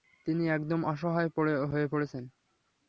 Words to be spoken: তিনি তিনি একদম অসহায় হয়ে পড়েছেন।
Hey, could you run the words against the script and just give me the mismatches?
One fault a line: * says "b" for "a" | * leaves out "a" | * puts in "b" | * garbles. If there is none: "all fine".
* leaves out "তিনি"